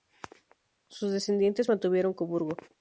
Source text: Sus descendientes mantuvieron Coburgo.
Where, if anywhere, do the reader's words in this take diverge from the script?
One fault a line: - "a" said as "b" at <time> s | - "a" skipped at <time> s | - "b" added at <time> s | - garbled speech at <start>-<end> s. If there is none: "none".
none